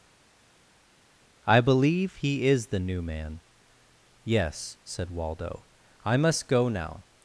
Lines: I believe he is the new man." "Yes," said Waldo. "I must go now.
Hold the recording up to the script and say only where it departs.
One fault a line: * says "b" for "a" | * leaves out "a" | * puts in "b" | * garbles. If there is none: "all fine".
all fine